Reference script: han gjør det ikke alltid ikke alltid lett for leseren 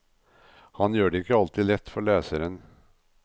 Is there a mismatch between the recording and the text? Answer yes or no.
yes